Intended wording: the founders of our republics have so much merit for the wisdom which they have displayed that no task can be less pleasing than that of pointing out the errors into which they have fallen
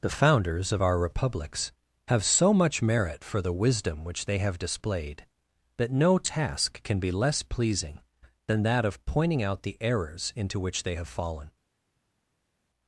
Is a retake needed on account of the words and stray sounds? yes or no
no